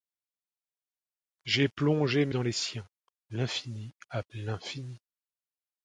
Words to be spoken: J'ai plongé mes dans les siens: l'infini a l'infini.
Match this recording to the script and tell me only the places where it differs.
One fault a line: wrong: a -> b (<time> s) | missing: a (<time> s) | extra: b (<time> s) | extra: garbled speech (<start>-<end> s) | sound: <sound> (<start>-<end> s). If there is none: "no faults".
no faults